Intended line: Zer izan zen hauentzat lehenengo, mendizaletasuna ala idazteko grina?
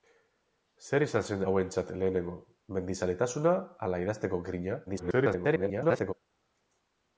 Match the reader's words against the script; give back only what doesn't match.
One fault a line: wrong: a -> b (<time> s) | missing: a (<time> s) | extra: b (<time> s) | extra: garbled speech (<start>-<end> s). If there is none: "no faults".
extra: garbled speech (4.9-6.1 s)